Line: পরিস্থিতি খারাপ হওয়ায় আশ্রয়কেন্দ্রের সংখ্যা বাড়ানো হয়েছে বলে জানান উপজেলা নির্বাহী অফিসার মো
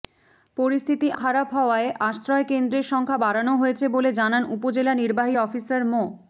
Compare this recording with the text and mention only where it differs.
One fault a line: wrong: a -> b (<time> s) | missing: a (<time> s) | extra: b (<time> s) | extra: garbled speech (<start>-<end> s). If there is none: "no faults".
no faults